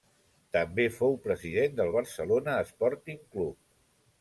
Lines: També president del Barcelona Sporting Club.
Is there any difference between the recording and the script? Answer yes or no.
yes